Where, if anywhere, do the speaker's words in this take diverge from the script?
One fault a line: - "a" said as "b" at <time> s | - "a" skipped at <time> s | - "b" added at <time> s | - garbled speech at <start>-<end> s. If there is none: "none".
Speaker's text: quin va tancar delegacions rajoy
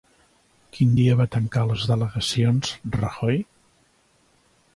- "dia" added at 1.0 s
- "les" added at 1.7 s